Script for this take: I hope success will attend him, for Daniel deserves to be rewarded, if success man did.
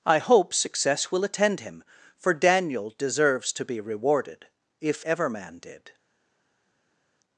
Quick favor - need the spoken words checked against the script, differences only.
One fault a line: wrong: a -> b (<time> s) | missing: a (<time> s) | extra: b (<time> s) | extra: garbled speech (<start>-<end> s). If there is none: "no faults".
wrong: success -> ever (5.0 s)